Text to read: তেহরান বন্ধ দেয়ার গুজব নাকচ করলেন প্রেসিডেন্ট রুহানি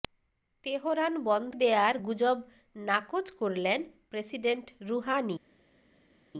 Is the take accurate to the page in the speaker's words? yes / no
yes